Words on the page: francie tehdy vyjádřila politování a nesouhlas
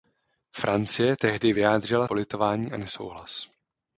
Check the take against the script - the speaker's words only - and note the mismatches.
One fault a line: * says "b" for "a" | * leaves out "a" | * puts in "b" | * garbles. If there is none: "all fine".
all fine